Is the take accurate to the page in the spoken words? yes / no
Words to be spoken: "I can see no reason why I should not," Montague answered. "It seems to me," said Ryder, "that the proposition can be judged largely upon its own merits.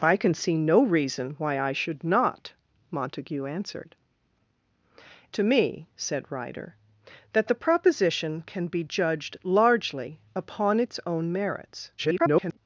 no